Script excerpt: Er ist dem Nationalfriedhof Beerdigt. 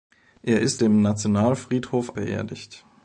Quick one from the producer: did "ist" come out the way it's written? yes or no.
yes